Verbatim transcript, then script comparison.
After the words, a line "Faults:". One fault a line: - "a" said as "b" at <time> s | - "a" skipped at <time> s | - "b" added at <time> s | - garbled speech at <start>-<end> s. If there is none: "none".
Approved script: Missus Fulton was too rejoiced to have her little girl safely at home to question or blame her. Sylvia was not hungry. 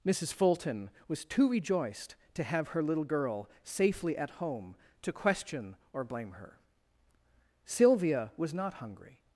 Missus Fulton was too rejoiced to have her little girl safely at home to question or blame her. Sylvia was not hungry.
Faults:
none